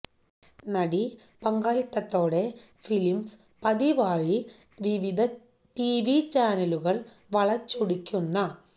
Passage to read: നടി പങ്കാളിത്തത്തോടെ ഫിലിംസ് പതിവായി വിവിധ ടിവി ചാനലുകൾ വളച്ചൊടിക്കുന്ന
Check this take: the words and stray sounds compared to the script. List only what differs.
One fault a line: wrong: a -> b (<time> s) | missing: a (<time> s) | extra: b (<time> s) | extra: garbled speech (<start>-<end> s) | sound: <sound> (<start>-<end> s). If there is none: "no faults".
no faults